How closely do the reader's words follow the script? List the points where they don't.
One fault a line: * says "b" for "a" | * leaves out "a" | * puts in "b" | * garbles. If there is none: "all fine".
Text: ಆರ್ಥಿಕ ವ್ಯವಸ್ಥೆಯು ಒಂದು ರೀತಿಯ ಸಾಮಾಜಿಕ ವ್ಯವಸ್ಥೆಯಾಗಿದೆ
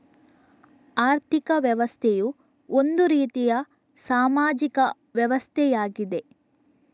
all fine